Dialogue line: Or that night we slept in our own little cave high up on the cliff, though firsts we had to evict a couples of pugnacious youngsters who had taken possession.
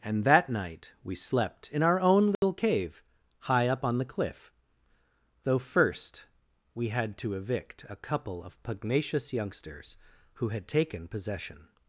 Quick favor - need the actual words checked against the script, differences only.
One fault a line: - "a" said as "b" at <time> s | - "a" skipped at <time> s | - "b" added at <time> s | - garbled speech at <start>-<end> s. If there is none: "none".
- "Or" said as "And" at 0.0 s
- "firsts" said as "first" at 5.6 s
- "couples" said as "couple" at 8.0 s